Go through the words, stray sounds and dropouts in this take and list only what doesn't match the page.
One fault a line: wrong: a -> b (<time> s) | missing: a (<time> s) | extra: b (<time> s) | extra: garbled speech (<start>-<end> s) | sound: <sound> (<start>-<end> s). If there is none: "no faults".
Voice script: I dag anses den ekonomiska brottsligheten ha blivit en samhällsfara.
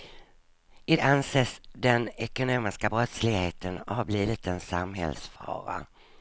missing: dag (0.9 s)